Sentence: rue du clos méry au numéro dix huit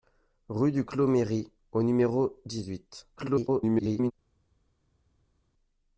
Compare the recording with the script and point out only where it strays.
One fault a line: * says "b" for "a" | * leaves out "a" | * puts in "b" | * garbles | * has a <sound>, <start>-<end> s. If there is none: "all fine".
* garbles